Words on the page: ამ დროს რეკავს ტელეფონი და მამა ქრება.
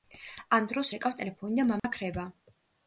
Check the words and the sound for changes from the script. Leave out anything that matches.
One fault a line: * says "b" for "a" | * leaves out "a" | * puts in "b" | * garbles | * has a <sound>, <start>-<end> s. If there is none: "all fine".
* has a dropout, 1.8-1.8 s